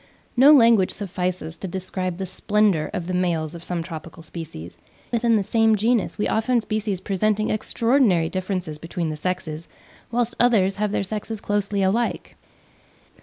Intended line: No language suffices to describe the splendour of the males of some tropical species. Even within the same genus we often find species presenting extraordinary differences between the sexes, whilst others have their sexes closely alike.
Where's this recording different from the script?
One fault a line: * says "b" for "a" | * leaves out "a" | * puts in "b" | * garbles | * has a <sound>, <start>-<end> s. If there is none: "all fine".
* leaves out "Even"
* leaves out "find"